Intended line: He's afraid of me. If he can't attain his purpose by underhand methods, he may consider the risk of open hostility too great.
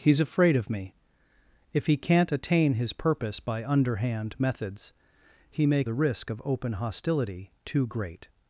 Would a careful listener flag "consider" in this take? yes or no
yes